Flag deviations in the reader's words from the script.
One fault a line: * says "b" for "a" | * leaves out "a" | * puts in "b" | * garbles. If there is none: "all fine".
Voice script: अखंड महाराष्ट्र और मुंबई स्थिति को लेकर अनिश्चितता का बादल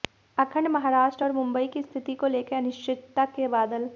* puts in "की"
* says "के" for "का"